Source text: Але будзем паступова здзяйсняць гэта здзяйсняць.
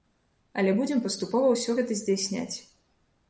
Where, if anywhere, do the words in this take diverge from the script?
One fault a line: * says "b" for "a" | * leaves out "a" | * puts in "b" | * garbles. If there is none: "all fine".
* says "ўсё" for "здзяйсняць"